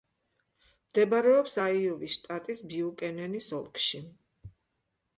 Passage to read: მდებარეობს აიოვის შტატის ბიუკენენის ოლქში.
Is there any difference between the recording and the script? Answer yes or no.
no